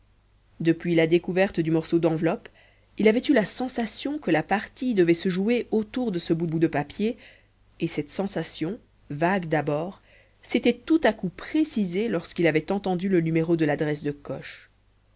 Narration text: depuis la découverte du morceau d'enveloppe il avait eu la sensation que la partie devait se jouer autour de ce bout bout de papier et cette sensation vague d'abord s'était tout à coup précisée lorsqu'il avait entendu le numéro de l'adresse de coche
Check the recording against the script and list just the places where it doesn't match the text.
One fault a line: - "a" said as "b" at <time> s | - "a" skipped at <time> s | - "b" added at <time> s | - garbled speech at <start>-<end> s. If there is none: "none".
none